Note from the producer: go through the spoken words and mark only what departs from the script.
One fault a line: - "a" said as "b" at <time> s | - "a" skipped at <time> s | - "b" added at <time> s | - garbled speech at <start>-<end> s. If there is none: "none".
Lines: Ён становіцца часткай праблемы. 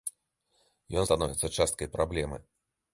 none